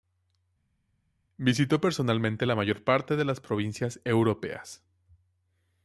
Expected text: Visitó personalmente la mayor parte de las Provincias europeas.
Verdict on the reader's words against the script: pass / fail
pass